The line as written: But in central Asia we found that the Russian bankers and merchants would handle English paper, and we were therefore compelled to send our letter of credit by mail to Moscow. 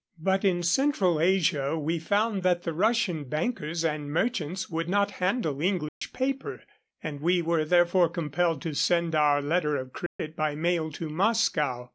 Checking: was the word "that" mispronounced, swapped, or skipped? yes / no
no